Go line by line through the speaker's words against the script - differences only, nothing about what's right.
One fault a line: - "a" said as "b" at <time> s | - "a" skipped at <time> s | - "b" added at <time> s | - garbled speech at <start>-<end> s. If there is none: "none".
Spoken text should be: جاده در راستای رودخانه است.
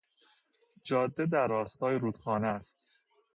none